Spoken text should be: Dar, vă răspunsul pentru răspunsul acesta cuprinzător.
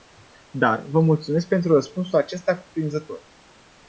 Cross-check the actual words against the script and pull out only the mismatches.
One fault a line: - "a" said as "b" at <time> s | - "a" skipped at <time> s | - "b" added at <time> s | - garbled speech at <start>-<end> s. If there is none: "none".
- "răspunsul" said as "mulțumesc" at 1.0 s